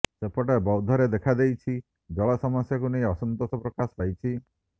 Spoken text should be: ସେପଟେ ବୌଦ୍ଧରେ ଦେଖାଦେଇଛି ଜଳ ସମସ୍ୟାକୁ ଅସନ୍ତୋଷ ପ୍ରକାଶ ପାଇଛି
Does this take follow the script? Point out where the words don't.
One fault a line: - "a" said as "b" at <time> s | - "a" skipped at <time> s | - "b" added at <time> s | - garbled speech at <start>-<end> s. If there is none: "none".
- "ନେଇ" added at 3.0 s